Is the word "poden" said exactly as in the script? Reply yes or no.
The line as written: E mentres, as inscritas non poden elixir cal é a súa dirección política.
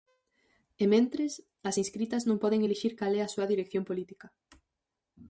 yes